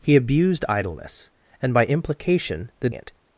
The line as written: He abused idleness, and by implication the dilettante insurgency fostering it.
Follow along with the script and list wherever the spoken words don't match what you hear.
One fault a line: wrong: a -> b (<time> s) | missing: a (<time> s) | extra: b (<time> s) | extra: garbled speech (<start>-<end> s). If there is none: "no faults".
missing: dilettante insurgency fostering (2.9 s)